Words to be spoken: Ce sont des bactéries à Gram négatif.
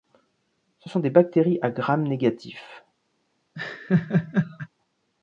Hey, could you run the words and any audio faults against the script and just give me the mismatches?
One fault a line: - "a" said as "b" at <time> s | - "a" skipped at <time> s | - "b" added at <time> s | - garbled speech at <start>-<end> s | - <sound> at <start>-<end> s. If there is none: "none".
- laugh at 3.5-4.7 s